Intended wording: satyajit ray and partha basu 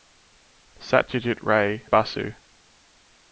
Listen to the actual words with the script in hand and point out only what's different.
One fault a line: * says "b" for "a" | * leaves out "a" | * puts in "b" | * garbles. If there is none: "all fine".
* leaves out "and partha"